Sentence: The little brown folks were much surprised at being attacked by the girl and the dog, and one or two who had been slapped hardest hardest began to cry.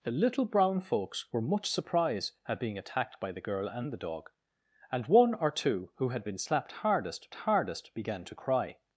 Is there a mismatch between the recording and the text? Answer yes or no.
no